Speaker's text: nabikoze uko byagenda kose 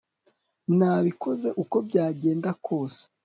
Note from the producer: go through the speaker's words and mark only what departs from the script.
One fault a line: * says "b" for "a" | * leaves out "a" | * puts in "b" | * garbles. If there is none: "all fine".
all fine